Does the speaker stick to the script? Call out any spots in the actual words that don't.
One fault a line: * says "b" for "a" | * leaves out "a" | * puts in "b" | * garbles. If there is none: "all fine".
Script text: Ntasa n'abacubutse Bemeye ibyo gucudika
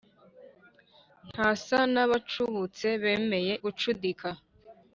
* leaves out "ibyo"